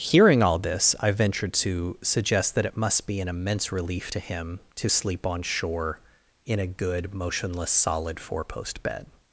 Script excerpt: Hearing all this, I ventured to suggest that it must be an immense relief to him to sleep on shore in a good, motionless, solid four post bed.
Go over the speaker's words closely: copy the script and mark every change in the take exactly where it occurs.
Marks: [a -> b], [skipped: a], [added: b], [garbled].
Hearing all this, I ventured to suggest that it must be an immense relief to him to sleep on shore in a good, motionless, solid four post bed.